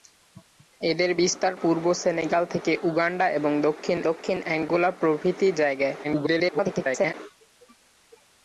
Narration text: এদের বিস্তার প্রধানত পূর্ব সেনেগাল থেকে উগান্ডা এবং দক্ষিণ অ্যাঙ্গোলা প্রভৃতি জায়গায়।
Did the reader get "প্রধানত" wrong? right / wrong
wrong